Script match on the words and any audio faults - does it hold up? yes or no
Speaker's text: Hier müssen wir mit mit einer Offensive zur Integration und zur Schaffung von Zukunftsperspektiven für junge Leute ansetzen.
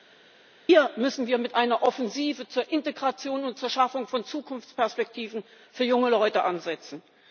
no